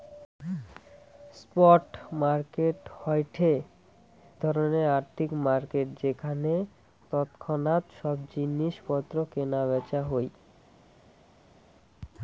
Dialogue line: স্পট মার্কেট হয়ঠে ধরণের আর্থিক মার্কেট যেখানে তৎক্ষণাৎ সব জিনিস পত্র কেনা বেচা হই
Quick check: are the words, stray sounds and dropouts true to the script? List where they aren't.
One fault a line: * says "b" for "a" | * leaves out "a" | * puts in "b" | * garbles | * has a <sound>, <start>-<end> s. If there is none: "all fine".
all fine